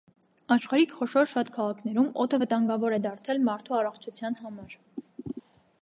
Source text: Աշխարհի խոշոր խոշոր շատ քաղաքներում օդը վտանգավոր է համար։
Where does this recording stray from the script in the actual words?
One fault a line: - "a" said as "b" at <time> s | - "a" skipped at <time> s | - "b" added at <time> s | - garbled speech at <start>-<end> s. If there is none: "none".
- "խոշոր" skipped at 1.3 s
- "դարձել մարդու առողջության" added at 3.1 s